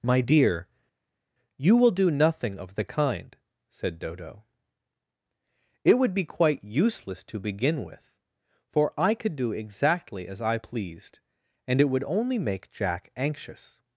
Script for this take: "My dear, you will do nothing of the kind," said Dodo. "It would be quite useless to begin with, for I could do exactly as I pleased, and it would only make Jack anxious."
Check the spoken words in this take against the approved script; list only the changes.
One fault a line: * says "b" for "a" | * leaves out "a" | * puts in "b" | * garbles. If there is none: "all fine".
all fine